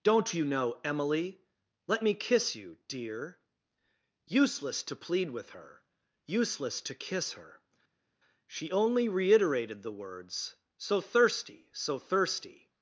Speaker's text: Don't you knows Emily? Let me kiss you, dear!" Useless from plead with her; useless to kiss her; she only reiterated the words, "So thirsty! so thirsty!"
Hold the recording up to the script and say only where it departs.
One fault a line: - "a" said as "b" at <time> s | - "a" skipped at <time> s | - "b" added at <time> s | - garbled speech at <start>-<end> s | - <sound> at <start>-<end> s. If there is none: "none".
- "knows" said as "know" at 0.4 s
- "from" said as "to" at 4.8 s